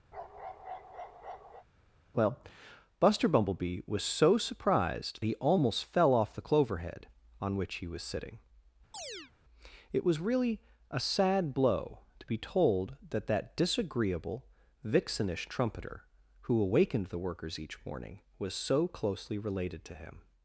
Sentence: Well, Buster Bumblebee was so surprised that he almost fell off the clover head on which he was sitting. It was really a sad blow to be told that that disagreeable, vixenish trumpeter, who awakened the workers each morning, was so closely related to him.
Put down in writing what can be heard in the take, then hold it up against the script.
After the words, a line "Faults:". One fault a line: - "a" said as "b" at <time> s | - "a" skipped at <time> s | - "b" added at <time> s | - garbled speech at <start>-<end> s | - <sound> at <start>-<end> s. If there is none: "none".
Well, Buster Bumblebee was so surprised he almost fell off the clover head on which he was sitting. It was really a sad blow to be told that that disagreeable, vixenish trumpeter, who awakened the workers each morning, was so closely related to him.
Faults:
- bark at 0.1-1.7 s
- "that" skipped at 5.2 s
- chirp at 8.9-9.3 s